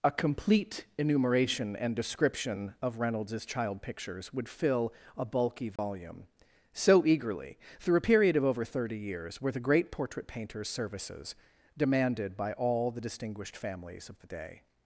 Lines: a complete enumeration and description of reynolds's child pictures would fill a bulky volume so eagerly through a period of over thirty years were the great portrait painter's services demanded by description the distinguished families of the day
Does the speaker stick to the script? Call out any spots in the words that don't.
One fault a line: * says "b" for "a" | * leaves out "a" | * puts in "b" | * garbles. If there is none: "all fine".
* says "all" for "description"